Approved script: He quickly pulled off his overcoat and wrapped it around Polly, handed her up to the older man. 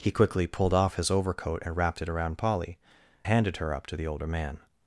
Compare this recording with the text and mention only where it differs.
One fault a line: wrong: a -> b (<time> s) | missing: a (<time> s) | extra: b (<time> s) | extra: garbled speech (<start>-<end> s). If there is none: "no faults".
no faults